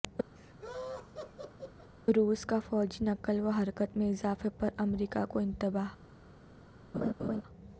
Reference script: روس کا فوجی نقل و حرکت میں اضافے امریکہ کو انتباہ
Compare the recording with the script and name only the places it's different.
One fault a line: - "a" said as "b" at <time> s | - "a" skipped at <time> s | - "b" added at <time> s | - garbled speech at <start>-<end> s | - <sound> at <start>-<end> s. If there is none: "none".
- laugh at 0.4-1.9 s
- "پر" added at 4.5 s
- laugh at 6.9-7.4 s